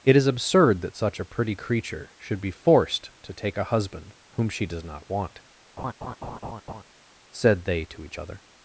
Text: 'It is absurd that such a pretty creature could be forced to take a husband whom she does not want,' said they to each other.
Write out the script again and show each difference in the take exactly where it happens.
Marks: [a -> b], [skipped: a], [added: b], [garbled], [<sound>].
'It is absurd that such a pretty creature [could -> should] be forced to take a husband whom she does not want,' [laugh] said they to each other.